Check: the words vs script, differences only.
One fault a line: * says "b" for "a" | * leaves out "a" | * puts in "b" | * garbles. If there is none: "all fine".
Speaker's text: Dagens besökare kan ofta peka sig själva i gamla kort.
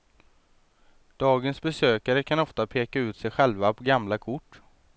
* puts in "ut"
* says "på" for "i"